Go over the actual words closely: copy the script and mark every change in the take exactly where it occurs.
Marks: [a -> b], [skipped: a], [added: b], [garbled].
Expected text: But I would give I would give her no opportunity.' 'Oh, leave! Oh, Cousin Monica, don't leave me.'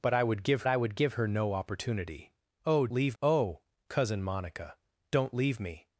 But I would give I would give her no opportunity.' 'Oh, leave! Oh, Cousin Monica, don't leave me.'